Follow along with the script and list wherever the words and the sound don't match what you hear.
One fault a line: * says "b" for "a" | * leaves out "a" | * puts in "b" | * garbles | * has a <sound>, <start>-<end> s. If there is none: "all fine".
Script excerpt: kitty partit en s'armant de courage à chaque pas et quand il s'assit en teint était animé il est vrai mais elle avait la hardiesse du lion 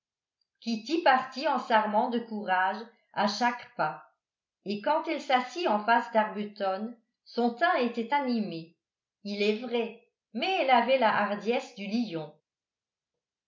* says "elle" for "il"
* puts in "face d'arbuton son"